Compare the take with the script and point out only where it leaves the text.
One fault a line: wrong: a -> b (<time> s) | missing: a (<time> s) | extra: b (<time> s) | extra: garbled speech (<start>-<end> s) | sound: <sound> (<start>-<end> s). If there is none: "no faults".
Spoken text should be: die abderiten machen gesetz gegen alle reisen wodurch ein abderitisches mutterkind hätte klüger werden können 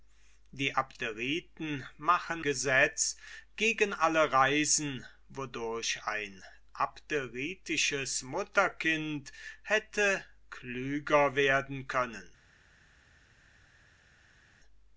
no faults